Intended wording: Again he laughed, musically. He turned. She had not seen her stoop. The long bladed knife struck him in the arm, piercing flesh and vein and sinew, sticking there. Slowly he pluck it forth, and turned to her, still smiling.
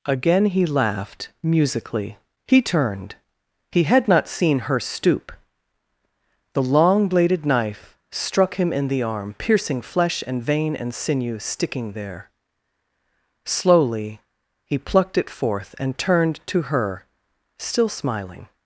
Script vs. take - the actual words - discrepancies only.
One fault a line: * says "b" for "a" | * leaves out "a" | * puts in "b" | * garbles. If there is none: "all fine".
* says "He" for "She"
* says "plucked" for "pluck"